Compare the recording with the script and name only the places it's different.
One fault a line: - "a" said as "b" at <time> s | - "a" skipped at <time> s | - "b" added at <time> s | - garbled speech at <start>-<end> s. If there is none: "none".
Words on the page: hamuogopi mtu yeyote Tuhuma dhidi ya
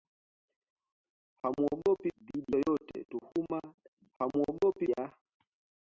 - "mtu" said as "dhidi" at 2.2 s
- "dhidi" said as "hamuogopi" at 4.2 s